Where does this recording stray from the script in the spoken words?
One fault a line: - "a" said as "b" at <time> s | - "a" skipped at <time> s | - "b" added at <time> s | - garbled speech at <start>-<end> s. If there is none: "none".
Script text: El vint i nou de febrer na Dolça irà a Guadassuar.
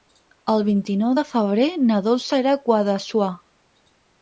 none